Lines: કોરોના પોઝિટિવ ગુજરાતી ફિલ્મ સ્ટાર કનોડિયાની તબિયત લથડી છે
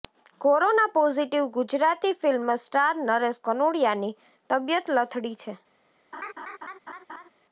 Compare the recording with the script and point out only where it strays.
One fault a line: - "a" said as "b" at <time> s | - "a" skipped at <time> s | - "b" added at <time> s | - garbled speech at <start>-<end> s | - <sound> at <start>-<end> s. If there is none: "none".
- "નરેશ" added at 3.0 s
- laugh at 6.1-7.3 s